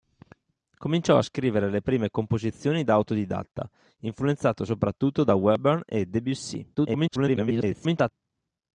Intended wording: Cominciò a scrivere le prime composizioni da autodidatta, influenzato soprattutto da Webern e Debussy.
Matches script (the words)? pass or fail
fail